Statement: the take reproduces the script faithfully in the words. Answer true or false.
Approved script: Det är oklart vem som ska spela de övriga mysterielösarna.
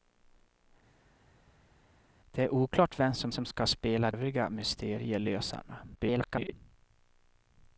false